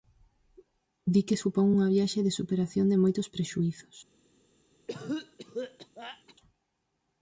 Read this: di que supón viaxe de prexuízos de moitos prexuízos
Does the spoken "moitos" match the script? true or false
true